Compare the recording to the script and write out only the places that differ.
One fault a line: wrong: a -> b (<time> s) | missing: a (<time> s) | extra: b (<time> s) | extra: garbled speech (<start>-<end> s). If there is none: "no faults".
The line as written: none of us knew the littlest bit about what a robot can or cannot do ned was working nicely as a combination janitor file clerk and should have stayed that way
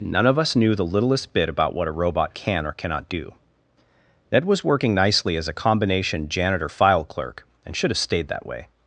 no faults